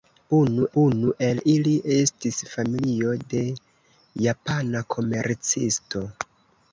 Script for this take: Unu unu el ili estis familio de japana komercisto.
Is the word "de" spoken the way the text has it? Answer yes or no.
yes